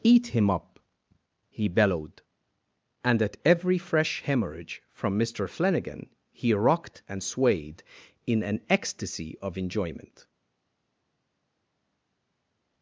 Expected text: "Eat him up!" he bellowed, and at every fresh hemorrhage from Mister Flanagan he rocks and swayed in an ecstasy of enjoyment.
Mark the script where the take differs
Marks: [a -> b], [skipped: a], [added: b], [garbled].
"Eat him up!" he bellowed, and at every fresh hemorrhage from Mister Flanagan he [rocks -> rocked] and swayed in an ecstasy of enjoyment.